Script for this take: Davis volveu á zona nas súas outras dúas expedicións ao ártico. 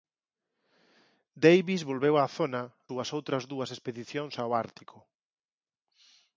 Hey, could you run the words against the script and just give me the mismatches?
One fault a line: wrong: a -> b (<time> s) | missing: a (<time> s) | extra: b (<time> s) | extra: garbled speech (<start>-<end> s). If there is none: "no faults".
missing: nas (2.6 s)